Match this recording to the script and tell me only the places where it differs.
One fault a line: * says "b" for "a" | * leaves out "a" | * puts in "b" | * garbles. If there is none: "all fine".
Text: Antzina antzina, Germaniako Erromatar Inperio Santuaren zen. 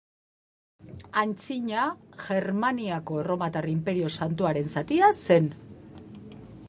* leaves out "antzina"
* puts in "zatia"